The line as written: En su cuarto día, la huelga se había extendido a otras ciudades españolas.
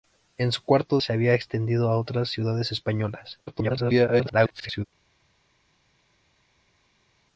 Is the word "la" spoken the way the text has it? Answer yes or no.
no